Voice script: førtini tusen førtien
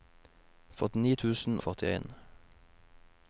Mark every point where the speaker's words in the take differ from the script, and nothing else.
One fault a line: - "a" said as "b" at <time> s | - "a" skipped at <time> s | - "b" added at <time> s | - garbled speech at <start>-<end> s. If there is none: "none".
none